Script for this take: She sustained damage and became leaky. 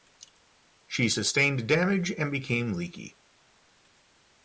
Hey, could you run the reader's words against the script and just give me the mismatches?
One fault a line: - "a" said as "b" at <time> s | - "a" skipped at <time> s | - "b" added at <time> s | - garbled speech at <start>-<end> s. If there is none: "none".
none